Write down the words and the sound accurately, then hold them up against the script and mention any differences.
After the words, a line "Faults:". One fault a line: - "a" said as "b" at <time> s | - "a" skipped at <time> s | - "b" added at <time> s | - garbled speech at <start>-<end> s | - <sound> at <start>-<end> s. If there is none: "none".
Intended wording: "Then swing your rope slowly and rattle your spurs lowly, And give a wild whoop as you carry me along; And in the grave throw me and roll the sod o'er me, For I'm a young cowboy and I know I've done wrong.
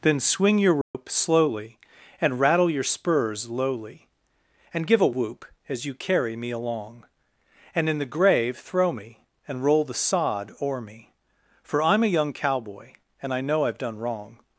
"Then swing your rope slowly and rattle your spurs lowly, And give a whoop as you carry me along; And in the grave throw me and roll the sod o'er me, For I'm a young cowboy and I know I've done wrong.
Faults:
- dropout at 0.8-0.9 s
- "wild" skipped at 5.2 s